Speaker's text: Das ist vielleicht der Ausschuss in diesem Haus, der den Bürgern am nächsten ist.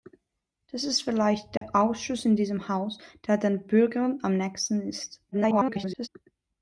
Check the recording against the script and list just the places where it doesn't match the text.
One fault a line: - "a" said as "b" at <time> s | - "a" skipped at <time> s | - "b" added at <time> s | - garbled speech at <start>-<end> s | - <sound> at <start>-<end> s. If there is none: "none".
- dropout at 1.6-1.6 s
- garbled speech at 5.3-6.1 s